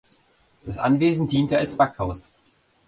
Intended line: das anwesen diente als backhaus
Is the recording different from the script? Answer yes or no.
no